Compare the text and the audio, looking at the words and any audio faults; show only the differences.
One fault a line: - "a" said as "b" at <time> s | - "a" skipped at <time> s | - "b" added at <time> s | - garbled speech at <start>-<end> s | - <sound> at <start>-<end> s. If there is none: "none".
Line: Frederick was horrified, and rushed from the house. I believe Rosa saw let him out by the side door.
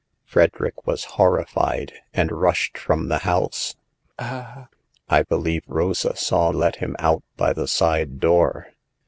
- laugh at 4.2-4.7 s